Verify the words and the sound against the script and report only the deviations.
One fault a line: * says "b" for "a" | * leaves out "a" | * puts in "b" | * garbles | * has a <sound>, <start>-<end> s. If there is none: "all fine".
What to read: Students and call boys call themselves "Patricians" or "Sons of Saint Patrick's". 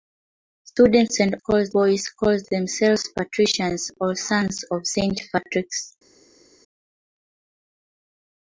all fine